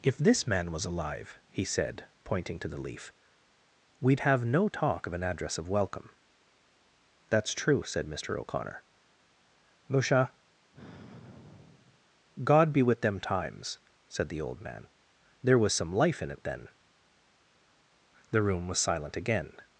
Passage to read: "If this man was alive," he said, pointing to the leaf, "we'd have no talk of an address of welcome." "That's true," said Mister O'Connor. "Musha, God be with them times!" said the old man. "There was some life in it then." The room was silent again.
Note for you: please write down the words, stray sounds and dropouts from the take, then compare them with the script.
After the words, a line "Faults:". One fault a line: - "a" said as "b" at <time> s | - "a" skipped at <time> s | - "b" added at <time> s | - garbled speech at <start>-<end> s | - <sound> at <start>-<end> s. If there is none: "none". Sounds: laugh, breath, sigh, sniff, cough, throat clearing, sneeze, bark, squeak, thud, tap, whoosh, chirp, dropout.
"If this man was alive," he said, pointing to the leaf, "we'd have no talk of an address of welcome." "That's true," said Mister O'Connor. "Musha, God be with them times!" said the old man. "There was some life in it then." The room was silent again.
Faults:
- sigh at 10.7-12.1 s